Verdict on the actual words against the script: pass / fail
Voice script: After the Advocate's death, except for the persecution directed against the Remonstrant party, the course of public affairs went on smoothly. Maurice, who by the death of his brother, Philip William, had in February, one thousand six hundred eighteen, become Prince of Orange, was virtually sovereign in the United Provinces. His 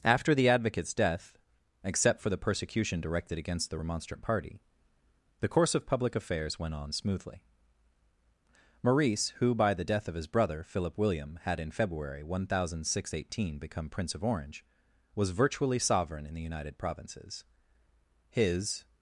pass